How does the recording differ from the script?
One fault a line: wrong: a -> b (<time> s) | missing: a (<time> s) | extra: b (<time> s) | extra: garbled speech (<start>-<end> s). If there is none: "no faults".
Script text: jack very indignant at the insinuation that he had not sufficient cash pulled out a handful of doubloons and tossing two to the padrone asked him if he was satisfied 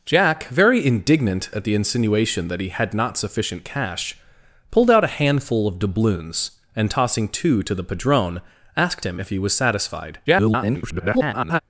extra: garbled speech (10.3-11.6 s)